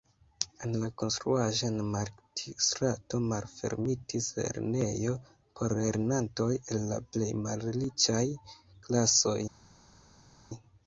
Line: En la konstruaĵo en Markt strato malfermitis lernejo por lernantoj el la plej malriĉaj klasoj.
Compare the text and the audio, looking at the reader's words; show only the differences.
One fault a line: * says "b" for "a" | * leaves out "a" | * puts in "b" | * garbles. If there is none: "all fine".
all fine